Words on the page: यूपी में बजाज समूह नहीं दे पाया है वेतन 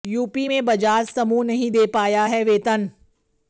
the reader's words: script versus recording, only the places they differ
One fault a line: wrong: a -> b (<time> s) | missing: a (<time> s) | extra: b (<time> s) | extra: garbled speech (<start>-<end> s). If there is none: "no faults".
no faults